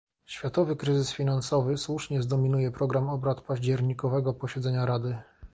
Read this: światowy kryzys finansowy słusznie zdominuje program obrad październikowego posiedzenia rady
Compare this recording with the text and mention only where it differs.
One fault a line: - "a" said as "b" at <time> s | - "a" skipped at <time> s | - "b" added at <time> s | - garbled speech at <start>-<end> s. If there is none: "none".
none